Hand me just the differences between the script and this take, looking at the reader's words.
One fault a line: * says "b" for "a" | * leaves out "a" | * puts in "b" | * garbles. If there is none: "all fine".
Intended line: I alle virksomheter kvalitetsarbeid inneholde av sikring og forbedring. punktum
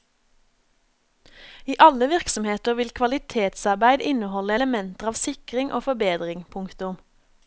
* puts in "vil"
* puts in "elementer"